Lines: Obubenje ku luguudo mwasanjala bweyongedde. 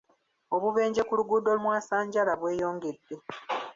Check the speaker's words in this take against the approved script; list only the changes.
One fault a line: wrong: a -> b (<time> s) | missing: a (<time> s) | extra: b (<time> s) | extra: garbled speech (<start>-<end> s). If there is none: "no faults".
no faults